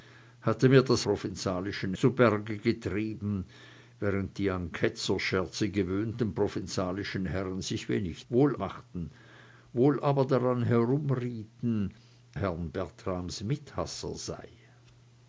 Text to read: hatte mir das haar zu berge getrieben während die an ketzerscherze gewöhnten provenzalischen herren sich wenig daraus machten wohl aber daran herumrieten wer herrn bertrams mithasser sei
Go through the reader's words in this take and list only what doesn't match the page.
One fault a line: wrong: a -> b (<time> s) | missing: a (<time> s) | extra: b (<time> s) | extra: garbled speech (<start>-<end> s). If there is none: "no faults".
wrong: haar -> provenzalischen (1.0 s)
wrong: daraus -> wohl (8.3 s)
missing: wer (11.9 s)